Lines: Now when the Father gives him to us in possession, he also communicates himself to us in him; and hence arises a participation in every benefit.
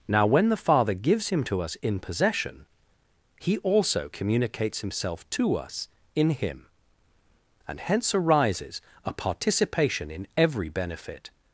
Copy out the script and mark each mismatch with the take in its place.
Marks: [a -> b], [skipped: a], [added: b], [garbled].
Now when the Father gives him to us in possession, he also communicates himself to us in him; and hence arises a participation in every benefit.